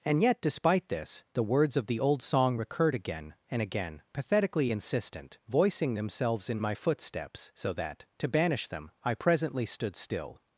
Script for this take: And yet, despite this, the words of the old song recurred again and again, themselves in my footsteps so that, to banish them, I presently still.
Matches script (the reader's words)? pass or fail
fail